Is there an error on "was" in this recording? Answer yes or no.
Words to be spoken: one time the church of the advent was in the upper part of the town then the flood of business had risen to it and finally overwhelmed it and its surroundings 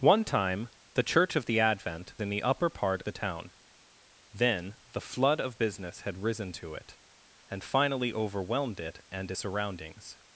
yes